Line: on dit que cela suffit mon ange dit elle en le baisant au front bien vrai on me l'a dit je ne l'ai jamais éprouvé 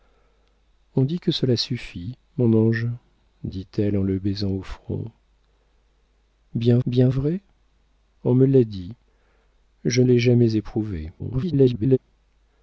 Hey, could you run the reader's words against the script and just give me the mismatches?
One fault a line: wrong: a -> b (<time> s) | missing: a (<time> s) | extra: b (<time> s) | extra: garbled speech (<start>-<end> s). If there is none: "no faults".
extra: bien (6.9 s)
missing: ne (10.0 s)
extra: garbled speech (11.2-12.0 s)